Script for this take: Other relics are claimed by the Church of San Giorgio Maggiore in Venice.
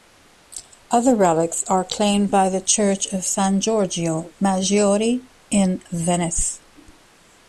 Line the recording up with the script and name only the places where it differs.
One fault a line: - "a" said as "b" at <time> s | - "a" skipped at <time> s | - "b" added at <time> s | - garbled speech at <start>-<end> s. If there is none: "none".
none